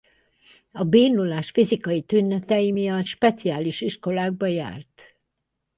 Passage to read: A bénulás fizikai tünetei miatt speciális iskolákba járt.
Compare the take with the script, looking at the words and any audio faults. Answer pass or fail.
pass